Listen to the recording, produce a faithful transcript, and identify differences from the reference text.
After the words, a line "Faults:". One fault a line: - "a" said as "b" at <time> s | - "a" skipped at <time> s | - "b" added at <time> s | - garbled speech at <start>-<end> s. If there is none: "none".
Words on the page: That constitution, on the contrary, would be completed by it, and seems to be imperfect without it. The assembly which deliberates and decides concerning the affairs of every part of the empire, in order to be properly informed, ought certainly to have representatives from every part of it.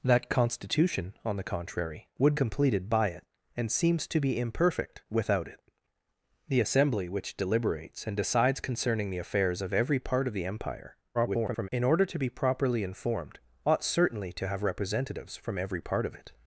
That constitution, on the contrary, would completed by it, and seems to be imperfect without it. The assembly which deliberates and decides concerning the affairs of every part of the empire, [garbled] in order to be properly informed, ought certainly to have representatives from every part of it.
Faults:
- "be" skipped at 2.4 s
- garbled speech at 11.1-11.7 s